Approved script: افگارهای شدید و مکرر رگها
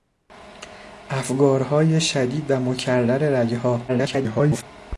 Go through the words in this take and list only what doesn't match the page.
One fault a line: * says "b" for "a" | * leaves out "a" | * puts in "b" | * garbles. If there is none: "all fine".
* garbles